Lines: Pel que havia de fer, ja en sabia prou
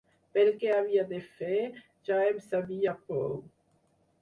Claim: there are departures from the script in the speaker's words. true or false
false